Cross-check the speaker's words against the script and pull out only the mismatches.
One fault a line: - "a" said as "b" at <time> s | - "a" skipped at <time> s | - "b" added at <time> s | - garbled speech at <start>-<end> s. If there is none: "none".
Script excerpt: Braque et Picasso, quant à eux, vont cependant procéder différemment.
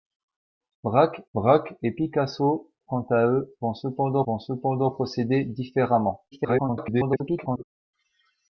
- "braque" added at 1.3 s
- "vont cependant" added at 4.2 s
- garbled speech at 6.3-7.6 s